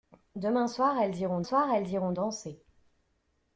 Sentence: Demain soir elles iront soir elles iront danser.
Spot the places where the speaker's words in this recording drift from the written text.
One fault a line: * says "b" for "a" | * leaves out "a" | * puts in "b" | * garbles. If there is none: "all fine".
all fine